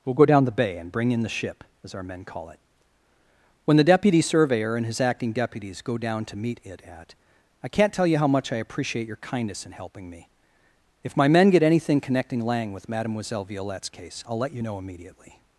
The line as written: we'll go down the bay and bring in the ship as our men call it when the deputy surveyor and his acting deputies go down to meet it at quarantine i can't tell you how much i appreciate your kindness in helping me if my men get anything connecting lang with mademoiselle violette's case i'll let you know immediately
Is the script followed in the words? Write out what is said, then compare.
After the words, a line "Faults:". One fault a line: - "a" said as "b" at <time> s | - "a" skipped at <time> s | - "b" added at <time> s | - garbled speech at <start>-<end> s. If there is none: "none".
we'll go down the bay and bring in the ship as our men call it when the deputy surveyor and his acting deputies go down to meet it at i can't tell you how much i appreciate your kindness in helping me if my men get anything connecting lang with mademoiselle violette's case i'll let you know immediately
Faults:
- "quarantine" skipped at 7.1 s